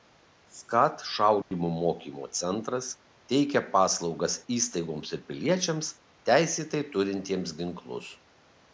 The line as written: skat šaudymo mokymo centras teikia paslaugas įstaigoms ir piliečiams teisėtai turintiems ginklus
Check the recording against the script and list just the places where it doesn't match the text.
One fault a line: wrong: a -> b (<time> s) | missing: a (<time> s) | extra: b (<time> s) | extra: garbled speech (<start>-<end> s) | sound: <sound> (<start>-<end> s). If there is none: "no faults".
sound: dropout (1.4-1.5 s)